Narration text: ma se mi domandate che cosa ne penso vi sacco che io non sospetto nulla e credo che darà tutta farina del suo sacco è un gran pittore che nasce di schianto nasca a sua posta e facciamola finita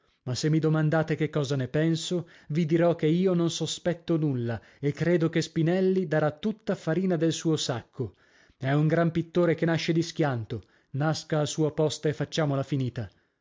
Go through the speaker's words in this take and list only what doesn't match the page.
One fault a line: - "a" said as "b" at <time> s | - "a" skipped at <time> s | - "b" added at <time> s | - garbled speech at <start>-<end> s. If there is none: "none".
- "sacco" said as "dirò" at 2.6 s
- "spinelli" added at 5.4 s